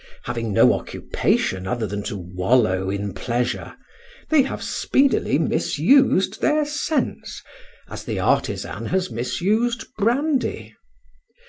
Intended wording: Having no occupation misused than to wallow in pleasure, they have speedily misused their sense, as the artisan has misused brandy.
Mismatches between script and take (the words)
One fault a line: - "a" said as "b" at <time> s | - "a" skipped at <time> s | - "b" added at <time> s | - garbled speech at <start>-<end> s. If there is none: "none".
- "misused" said as "other" at 1.7 s